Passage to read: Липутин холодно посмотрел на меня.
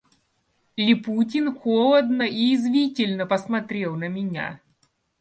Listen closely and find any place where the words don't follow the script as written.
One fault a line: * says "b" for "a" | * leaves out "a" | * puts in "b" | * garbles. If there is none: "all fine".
* puts in "и язвительно"